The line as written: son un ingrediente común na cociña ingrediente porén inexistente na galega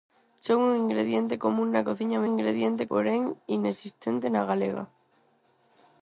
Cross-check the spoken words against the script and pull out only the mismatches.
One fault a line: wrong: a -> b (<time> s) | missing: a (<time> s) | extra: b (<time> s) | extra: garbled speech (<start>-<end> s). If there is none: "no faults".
no faults